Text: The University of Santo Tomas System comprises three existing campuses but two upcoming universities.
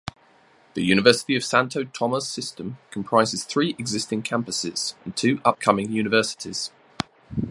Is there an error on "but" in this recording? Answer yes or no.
yes